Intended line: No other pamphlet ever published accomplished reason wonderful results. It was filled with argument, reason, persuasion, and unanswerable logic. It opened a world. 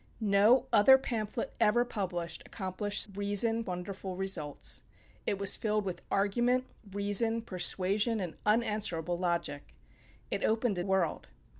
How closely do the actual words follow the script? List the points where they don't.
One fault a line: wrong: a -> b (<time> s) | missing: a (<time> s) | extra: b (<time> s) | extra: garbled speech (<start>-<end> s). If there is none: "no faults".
no faults